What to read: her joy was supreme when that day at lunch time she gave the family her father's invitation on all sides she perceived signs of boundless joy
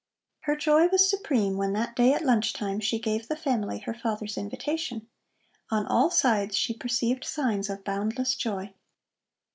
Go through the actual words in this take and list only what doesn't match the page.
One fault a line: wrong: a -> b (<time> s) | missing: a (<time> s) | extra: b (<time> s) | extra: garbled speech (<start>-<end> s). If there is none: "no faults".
no faults